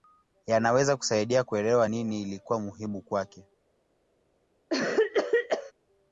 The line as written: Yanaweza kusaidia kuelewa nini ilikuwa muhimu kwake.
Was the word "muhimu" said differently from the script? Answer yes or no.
no